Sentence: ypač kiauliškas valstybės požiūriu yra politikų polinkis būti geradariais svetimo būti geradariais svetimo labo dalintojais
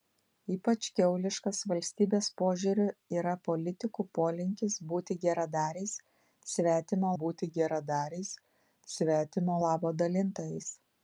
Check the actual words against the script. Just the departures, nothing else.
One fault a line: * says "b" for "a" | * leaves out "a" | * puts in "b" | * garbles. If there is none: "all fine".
all fine